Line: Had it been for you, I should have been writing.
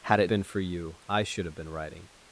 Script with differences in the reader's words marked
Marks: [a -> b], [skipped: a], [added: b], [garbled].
Had it been for you, I should have been writing.